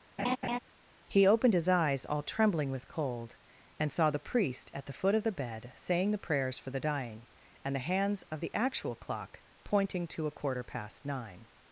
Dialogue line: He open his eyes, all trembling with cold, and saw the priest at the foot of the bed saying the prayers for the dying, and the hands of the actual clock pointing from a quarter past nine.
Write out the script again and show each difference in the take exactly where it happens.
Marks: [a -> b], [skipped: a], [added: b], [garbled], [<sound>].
[laugh] He [open -> opened] his eyes, all trembling with cold, and saw the priest at the foot of the bed saying the prayers for the dying, and the hands of the actual clock pointing [from -> to] a quarter past nine.